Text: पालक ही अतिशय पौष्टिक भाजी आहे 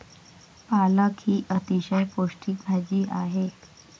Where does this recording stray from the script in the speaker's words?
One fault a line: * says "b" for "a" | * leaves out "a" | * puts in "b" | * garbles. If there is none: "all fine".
all fine